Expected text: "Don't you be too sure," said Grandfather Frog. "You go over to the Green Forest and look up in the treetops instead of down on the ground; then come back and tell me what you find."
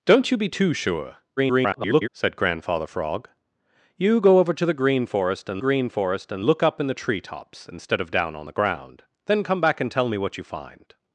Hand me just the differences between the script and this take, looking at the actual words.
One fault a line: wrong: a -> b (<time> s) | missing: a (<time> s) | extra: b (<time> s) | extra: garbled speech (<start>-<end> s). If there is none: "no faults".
extra: garbled speech (1.4-2.1 s)
extra: Green Forest and (5.6 s)